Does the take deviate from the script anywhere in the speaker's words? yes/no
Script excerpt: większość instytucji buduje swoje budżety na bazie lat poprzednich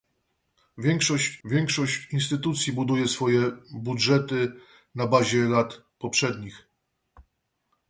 yes